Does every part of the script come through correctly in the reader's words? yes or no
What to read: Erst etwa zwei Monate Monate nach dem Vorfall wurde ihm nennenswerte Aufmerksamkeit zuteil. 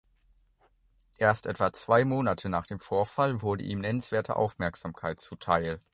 no